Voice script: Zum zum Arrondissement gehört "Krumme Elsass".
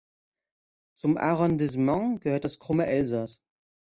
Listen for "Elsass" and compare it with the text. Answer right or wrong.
right